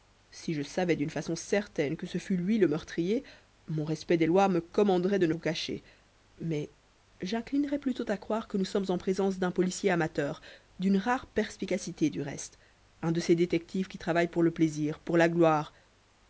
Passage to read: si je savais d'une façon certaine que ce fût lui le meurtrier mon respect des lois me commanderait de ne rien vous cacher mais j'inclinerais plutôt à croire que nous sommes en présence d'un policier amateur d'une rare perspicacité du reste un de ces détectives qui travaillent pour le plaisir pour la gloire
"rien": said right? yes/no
no